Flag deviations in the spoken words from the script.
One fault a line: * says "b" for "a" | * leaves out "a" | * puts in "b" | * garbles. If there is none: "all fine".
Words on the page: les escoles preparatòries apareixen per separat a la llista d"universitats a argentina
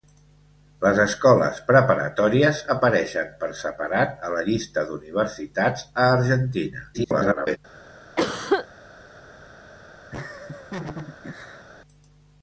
* garbles